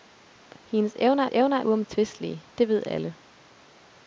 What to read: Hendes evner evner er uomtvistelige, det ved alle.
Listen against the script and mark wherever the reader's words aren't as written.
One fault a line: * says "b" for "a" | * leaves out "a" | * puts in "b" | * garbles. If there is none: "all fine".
all fine